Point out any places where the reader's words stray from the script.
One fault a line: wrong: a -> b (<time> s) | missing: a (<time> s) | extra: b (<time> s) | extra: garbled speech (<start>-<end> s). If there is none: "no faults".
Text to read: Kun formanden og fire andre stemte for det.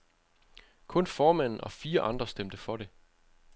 no faults